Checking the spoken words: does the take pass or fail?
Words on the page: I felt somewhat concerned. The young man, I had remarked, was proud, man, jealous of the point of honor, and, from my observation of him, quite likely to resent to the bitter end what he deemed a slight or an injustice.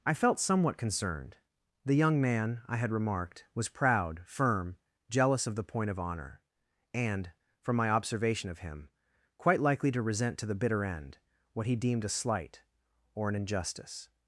fail